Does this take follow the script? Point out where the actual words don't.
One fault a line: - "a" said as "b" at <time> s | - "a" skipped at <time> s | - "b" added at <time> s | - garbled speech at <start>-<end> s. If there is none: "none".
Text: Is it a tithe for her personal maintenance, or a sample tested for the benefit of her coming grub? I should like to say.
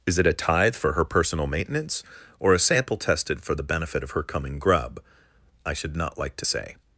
- "not" added at 6.0 s